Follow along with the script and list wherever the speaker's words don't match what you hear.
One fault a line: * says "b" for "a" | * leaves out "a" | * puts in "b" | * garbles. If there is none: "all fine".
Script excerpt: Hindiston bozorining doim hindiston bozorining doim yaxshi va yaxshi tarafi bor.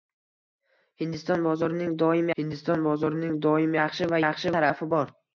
all fine